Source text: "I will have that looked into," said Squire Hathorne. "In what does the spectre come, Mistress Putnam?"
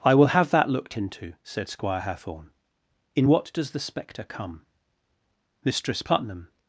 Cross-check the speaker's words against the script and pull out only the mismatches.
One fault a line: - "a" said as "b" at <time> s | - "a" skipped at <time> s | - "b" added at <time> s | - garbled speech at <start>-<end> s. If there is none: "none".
none